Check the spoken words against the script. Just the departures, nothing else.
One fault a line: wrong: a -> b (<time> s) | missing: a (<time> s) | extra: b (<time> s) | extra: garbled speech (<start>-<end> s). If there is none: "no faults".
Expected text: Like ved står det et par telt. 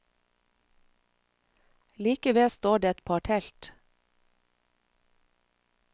no faults